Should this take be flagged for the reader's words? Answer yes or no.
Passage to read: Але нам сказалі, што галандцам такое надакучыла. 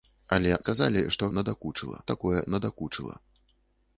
yes